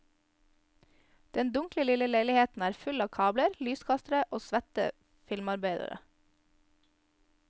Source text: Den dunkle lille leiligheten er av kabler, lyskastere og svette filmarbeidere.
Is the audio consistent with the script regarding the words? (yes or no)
no